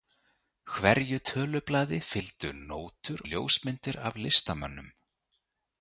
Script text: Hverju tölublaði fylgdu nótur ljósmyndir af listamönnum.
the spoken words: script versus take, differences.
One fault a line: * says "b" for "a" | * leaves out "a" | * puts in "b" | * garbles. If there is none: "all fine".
all fine